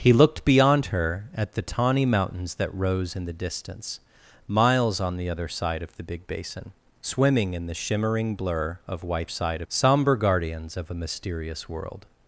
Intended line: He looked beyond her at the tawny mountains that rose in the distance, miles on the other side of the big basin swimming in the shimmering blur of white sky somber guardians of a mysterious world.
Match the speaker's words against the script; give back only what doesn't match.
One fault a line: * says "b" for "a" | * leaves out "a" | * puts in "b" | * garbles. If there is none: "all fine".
* says "side" for "sky"